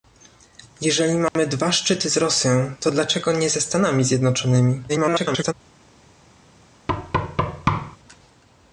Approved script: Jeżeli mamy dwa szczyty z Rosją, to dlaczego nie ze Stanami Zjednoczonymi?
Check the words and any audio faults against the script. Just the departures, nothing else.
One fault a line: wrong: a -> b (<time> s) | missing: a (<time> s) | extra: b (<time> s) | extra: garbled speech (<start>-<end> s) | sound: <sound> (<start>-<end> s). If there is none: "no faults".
sound: dropout (1.3-1.4 s)
extra: garbled speech (4.9-5.5 s)
sound: thud (6.9-8.0 s)